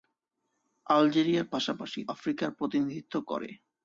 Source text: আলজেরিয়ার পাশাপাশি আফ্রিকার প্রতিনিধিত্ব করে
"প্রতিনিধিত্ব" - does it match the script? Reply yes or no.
yes